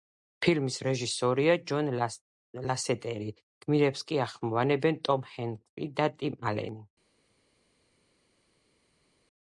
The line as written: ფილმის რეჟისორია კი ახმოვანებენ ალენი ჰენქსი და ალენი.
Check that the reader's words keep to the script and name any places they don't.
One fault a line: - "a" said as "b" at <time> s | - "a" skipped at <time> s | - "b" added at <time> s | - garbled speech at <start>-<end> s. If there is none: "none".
- "ჯონ ლასეტერი გმირებს" added at 1.7 s
- "ალენი" said as "ტომ" at 5.1 s
- "ტიმ" added at 6.2 s